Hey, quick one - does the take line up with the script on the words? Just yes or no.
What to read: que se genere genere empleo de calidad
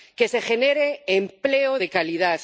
no